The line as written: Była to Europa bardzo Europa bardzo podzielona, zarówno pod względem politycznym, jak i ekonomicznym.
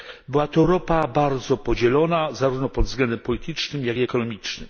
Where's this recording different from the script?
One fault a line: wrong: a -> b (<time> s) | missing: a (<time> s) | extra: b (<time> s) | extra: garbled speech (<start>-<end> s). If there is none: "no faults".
missing: Europa bardzo (1.6 s)